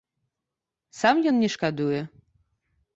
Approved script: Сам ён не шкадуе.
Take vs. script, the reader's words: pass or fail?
pass